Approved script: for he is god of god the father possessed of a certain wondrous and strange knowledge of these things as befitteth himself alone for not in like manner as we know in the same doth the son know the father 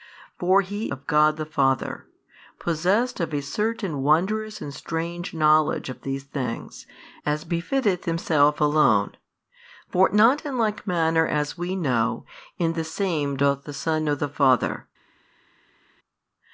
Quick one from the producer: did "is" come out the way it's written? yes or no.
no